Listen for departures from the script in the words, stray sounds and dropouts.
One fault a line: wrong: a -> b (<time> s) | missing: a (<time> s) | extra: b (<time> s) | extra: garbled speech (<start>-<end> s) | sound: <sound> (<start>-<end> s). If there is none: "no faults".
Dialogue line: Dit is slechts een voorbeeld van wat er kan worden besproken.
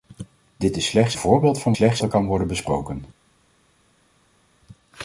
missing: een (1.1 s)
wrong: wat -> slechts (1.7 s)